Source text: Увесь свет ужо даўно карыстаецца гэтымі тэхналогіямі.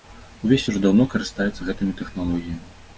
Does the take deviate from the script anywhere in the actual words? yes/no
yes